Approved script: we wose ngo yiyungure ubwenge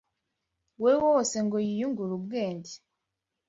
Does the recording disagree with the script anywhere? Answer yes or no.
no